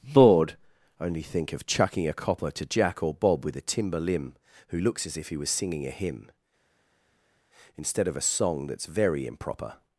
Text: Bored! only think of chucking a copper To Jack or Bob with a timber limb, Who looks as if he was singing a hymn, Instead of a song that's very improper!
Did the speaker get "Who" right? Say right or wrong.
right